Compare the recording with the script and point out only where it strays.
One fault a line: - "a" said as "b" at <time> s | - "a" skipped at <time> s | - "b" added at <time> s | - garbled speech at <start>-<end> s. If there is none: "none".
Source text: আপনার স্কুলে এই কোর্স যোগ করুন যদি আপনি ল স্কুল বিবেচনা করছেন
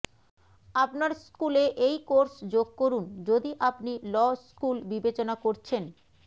none